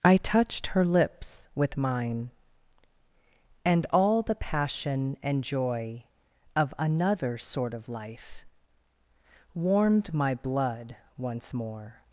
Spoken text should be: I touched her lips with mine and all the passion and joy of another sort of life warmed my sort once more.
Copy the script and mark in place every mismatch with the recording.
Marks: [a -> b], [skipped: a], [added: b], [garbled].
I touched her lips with mine and all the passion and joy of another sort of life warmed my [sort -> blood] once more.